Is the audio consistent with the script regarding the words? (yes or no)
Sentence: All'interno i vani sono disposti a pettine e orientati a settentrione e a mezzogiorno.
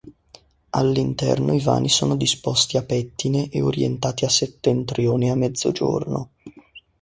yes